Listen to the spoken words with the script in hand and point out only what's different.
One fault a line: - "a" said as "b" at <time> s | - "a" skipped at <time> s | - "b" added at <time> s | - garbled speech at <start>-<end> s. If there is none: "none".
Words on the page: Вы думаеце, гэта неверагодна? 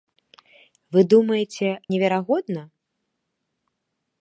- "гэта" skipped at 1.7 s